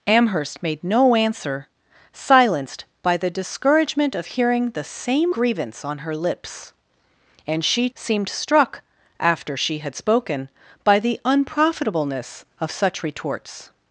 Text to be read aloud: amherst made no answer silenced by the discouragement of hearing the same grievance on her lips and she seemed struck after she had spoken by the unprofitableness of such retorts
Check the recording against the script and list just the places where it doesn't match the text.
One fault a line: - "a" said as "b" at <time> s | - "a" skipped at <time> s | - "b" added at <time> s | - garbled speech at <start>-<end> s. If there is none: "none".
none